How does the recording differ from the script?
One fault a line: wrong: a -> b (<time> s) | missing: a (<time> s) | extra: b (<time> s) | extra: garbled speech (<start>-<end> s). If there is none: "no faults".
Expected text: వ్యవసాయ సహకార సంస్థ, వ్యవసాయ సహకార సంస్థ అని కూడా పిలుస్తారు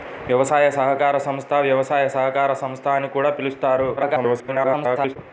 extra: garbled speech (4.0-5.2 s)